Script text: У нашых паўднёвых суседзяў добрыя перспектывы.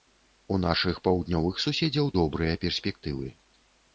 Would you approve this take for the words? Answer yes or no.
yes